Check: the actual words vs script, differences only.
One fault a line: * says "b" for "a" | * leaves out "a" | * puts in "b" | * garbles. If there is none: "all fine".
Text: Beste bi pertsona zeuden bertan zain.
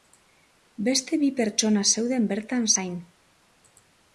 all fine